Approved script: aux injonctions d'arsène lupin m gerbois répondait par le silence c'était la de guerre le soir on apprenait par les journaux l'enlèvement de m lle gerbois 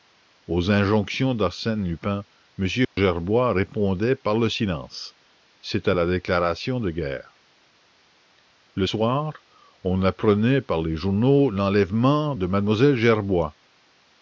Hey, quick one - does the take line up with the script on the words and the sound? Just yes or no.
no